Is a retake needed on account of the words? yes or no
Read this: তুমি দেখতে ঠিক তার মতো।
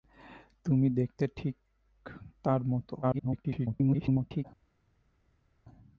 yes